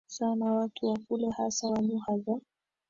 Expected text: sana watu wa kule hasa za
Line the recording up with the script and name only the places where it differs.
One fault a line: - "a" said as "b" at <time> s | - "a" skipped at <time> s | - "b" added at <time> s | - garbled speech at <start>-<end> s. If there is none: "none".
- "wa lugha" added at 1.6 s